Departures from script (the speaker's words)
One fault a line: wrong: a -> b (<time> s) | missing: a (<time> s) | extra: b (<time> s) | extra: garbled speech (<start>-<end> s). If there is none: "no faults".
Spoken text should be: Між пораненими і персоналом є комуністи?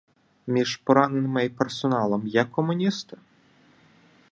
no faults